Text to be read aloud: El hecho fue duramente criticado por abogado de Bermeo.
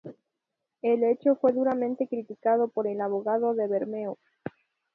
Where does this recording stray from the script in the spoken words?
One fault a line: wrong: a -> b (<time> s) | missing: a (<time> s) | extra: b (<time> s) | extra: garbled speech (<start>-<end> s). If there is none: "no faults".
extra: el (2.9 s)